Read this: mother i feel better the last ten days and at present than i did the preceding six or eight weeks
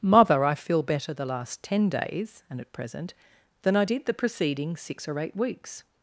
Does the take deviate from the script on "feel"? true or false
false